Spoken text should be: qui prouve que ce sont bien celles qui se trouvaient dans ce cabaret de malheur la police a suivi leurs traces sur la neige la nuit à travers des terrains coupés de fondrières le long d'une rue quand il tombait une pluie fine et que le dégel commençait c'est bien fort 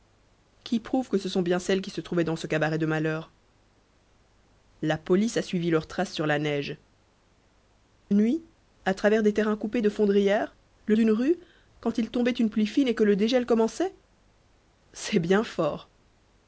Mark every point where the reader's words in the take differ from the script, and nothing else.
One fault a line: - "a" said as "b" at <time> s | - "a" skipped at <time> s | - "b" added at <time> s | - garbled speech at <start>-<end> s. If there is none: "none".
- "la" skipped at 6.8 s
- "long" skipped at 10.9 s